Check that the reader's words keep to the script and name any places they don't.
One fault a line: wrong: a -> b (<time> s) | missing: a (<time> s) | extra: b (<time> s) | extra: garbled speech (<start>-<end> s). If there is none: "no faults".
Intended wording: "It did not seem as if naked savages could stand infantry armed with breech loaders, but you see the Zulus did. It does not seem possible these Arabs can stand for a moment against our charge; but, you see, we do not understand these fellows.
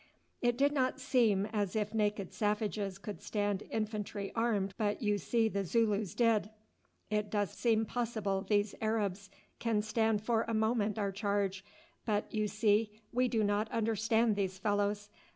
missing: with breech loaders (4.7 s)
missing: not (7.6 s)
missing: against (11.0 s)